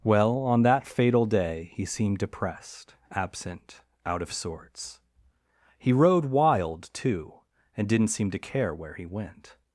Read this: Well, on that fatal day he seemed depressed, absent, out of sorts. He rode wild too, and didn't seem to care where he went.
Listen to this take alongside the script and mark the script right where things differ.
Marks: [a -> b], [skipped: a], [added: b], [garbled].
Well, on that fatal day he seemed depressed, absent, out of sorts. He rode wild too, and didn't seem to care where he went.